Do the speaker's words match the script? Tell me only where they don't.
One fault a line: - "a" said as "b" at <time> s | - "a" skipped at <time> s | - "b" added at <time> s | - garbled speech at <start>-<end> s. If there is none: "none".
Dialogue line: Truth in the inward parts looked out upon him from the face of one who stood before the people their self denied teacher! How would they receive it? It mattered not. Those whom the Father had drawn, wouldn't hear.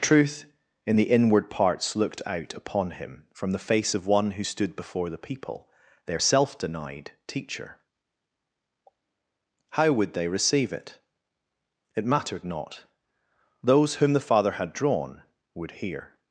- "wouldn't" said as "would" at 15.5 s